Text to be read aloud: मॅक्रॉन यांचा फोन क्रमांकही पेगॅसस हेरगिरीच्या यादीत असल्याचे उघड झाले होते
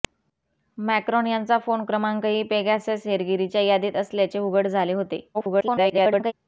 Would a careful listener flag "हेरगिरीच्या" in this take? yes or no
no